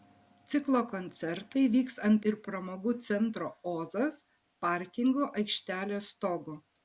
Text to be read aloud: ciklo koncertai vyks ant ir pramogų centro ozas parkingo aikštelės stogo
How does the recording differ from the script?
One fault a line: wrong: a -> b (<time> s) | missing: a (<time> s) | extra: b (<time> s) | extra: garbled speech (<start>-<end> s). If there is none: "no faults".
no faults